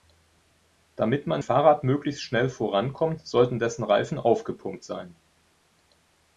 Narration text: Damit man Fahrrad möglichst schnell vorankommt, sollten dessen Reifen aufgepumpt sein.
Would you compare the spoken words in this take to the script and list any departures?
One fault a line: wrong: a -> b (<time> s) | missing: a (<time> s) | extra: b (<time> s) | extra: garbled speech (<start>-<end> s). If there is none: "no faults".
no faults